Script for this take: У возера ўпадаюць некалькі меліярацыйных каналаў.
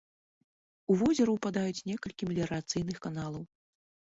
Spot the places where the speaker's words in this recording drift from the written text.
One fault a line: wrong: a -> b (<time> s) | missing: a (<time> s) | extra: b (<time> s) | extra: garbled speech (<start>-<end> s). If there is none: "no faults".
no faults